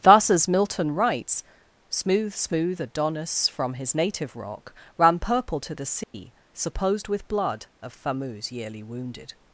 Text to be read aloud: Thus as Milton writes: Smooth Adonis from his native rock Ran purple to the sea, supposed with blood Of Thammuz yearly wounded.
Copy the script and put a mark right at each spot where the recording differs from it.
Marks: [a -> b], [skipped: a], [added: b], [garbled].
Thus as Milton writes: Smooth [added: Smooth] Adonis from his native rock Ran purple to the sea, supposed with blood Of Thammuz yearly wounded.